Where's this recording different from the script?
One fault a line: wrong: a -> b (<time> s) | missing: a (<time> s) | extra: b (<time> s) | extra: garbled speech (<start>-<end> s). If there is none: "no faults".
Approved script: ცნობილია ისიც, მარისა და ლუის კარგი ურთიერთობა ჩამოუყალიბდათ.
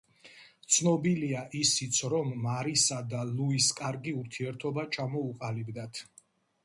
extra: რომ (2.1 s)